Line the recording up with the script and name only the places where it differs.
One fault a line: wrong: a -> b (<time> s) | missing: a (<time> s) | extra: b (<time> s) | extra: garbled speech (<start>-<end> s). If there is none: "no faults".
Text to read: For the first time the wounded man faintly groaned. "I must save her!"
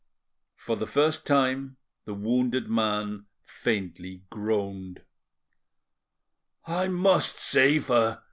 no faults